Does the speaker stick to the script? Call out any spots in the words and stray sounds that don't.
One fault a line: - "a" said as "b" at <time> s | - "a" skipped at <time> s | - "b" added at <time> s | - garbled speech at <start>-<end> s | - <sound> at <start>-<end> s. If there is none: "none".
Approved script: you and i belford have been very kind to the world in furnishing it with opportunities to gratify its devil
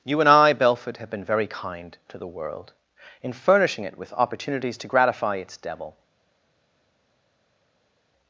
none